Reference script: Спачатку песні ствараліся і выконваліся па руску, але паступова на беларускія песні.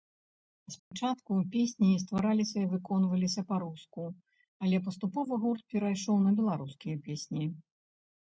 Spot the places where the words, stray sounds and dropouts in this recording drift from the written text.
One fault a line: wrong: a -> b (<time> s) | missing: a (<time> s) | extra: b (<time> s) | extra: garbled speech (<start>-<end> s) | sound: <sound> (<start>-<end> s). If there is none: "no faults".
sound: dropout (0.8-0.9 s)
extra: гурт перайшоў (5.4 s)